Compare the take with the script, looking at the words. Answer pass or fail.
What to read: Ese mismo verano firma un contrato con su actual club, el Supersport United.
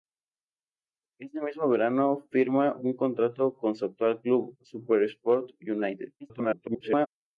fail